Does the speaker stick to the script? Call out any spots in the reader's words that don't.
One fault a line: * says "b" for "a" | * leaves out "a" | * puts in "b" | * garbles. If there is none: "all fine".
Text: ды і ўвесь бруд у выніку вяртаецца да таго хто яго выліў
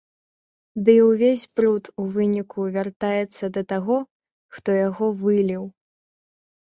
all fine